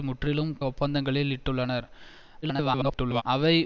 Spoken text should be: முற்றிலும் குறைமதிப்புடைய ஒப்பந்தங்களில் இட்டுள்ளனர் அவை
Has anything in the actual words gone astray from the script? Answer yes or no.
yes